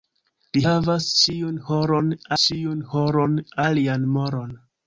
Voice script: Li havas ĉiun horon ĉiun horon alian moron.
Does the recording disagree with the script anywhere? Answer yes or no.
no